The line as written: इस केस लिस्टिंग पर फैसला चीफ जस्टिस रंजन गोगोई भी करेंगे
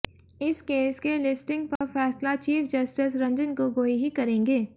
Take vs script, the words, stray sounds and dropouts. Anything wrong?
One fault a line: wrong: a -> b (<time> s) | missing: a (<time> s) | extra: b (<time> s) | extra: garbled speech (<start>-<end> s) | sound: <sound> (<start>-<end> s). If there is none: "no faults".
extra: के (1.0 s)
sound: dropout (1.8-1.8 s)
wrong: भी -> ही (4.0 s)